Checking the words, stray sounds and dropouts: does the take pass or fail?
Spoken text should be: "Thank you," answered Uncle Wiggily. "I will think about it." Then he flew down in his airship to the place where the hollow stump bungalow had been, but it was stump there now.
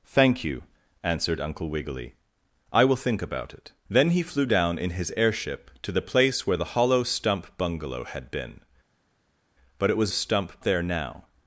pass